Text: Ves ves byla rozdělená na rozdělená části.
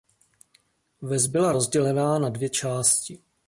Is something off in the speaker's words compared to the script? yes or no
yes